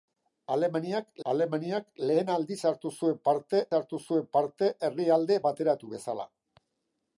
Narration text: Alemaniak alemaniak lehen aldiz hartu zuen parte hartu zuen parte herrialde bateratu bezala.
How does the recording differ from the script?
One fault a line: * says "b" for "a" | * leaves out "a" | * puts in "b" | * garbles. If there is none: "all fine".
all fine